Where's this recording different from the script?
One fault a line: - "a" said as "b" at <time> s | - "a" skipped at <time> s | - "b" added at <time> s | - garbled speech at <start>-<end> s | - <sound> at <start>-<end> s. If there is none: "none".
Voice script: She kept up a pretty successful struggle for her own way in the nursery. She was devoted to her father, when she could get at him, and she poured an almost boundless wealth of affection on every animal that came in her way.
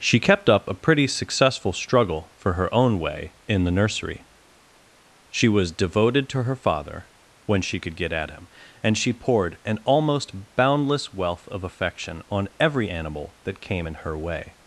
none